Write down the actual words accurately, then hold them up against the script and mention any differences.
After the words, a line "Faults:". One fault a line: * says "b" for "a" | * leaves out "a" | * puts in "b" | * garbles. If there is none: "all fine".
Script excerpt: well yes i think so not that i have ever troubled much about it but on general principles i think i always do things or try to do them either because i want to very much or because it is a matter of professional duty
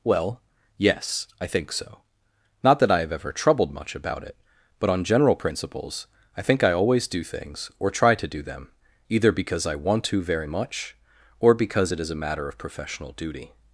well yes i think so not that i have ever troubled much about it but on general principles i think i always do things or try to do them either because i want to very much or because it is a matter of professional duty
Faults:
all fine